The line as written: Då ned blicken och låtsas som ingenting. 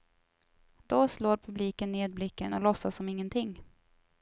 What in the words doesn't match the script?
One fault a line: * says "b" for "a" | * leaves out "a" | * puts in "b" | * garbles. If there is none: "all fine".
* puts in "slår publiken"